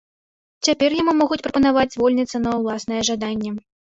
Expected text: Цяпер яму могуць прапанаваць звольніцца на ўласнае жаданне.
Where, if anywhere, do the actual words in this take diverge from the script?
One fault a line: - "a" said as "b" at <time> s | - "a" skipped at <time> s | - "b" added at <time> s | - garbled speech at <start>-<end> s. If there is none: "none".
none